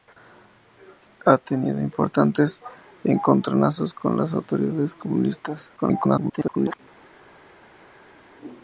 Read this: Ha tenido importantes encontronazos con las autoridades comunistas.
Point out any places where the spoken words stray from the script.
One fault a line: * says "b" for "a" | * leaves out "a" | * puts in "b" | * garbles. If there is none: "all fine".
* garbles